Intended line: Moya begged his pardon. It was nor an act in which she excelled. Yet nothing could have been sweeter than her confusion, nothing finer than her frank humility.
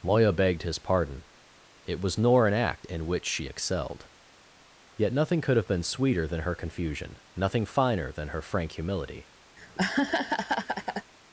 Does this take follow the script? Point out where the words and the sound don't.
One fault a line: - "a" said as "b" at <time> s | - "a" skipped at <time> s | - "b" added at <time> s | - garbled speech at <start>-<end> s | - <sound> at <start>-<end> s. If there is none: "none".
- laugh at 9.6-11.1 s